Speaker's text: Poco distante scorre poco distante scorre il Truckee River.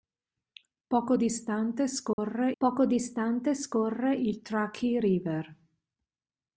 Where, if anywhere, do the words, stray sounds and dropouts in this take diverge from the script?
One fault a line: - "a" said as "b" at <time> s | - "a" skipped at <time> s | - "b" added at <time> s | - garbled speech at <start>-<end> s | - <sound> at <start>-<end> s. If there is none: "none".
- dropout at 2.1-2.2 s